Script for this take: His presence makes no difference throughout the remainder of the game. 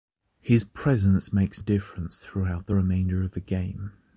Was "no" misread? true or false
true